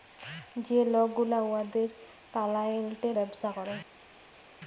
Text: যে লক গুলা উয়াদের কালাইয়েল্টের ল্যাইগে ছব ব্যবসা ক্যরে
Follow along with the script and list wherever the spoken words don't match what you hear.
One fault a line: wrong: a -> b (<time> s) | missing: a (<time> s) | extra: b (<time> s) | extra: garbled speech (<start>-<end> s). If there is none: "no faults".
missing: ল্যাইগে ছব (3.1 s)